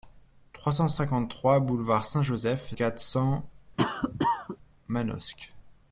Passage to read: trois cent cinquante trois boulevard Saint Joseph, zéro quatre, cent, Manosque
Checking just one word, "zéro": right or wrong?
wrong